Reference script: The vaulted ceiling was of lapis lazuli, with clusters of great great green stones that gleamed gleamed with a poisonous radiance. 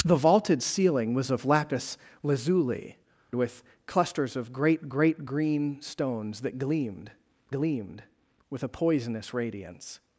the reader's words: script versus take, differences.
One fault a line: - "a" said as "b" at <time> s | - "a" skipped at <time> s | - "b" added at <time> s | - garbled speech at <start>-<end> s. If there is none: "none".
none